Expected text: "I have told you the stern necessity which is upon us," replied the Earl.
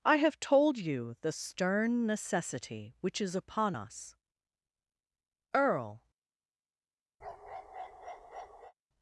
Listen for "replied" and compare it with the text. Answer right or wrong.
wrong